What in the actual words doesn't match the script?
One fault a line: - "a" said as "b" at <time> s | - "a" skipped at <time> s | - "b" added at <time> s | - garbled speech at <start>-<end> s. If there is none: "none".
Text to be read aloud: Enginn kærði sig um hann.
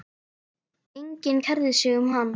none